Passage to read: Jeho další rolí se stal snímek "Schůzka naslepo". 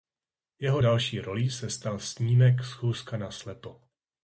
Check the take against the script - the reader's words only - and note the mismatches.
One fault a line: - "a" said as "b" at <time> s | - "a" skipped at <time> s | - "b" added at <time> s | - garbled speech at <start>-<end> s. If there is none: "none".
none